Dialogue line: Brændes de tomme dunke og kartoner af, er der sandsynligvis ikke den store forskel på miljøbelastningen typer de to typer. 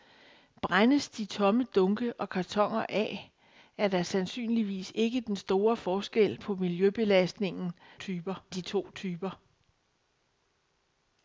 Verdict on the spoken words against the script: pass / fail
pass